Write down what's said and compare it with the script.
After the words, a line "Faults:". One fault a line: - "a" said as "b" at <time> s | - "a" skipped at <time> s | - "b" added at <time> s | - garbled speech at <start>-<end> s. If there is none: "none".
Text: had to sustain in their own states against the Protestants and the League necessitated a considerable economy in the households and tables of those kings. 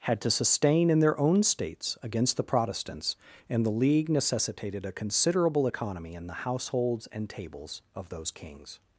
had to sustain in their own states against the Protestants and the League necessitated a considerable economy in the households and tables of those kings.
Faults:
none